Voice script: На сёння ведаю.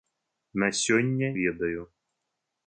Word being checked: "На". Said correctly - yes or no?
yes